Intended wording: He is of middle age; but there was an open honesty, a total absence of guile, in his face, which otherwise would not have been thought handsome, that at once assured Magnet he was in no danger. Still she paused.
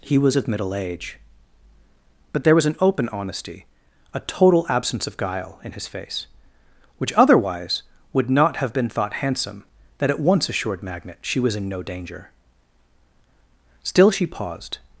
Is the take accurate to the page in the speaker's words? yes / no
no